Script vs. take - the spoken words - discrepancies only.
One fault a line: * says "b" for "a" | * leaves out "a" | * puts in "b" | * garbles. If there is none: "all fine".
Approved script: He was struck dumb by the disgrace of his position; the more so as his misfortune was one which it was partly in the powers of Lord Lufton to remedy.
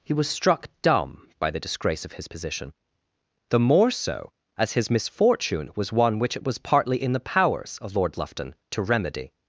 all fine